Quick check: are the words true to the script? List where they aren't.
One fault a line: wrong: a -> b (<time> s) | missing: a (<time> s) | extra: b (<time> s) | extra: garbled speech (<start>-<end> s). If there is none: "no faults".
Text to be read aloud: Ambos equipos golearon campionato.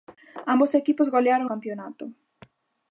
no faults